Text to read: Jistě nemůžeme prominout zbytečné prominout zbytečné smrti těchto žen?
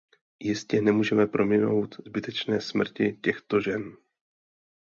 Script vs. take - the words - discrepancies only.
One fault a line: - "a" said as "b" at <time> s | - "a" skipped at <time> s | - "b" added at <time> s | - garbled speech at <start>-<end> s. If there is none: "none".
- "prominout zbytečné" skipped at 2.6 s